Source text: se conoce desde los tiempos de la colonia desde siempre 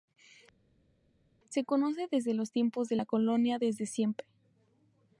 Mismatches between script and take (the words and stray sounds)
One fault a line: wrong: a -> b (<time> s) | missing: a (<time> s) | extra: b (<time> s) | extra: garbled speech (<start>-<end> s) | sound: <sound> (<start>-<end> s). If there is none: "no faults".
no faults